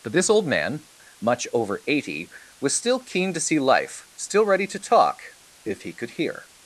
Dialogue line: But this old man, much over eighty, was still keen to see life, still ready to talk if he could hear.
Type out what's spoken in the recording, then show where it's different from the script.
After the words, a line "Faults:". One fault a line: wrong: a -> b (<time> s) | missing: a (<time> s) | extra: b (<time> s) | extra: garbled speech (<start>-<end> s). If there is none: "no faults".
But this old man, much over eighty, was still keen to see life, still ready to talk if he could hear.
Faults:
no faults